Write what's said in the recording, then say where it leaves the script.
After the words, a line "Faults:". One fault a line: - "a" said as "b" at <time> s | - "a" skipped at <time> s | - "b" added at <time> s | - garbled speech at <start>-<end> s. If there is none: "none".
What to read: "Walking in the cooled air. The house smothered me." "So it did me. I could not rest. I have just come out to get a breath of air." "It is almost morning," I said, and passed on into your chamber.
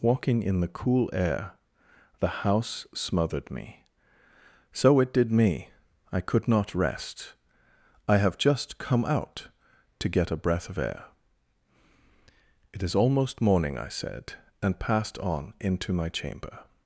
"Walking in the cool air. The house smothered me." "So it did me. I could not rest. I have just come out to get a breath of air." "It is almost morning," I said, and passed on into my chamber.
Faults:
- "cooled" said as "cool" at 0.7 s
- "your" said as "my" at 15.9 s